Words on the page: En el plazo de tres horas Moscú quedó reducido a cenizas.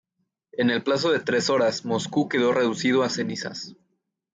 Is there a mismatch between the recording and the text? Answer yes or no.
no